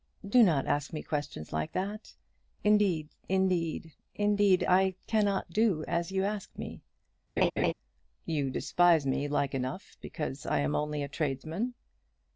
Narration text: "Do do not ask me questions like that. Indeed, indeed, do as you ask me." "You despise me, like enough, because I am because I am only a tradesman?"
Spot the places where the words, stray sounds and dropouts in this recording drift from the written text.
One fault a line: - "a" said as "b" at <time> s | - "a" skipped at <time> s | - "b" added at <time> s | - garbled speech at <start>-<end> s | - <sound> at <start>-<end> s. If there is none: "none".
- "do" skipped at 0.4 s
- "indeed I cannot" added at 4.2 s
- laugh at 7.4-7.7 s
- "because I am" skipped at 10.7 s